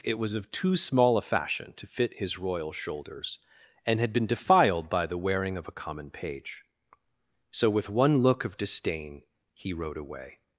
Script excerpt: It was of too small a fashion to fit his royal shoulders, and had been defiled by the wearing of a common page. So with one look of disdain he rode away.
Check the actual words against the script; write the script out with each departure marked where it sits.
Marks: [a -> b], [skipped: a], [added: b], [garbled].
It was of too small a fashion to fit his royal shoulders, and had been defiled by the wearing of a common page. So with one look of disdain he rode away.